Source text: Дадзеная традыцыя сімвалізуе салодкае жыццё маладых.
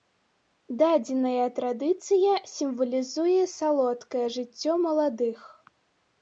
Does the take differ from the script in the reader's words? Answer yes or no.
no